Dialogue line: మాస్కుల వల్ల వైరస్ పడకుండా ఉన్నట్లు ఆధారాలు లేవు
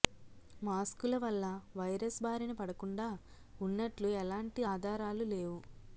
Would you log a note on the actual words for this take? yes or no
yes